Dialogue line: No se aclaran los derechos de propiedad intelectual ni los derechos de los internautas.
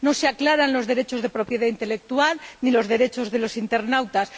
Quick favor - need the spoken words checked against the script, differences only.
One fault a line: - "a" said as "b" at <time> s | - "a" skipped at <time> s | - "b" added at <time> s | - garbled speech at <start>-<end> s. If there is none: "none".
none